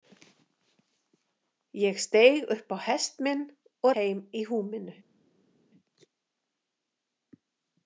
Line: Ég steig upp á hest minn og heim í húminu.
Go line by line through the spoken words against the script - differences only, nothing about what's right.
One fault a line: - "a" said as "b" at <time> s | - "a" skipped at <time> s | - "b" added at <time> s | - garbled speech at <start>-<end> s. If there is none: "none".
none